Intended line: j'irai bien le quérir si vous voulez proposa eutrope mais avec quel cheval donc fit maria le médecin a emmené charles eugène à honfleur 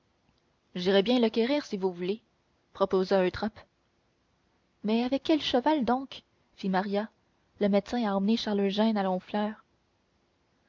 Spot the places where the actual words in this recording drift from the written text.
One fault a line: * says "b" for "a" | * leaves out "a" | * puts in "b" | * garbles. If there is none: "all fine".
all fine